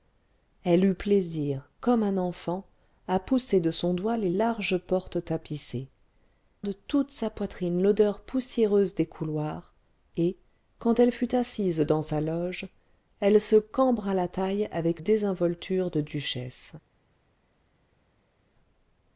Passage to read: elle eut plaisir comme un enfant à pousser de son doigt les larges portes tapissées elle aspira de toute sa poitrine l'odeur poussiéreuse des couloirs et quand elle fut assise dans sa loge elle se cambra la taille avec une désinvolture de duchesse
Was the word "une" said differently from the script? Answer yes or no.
yes